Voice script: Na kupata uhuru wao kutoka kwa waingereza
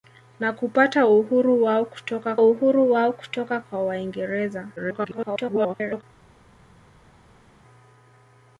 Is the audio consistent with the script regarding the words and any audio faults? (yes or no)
no